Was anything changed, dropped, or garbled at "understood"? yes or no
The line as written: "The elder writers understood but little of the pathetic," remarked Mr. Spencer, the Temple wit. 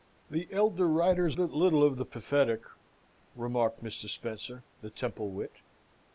yes